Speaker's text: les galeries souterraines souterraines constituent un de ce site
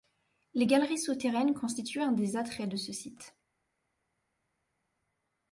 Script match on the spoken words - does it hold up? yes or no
no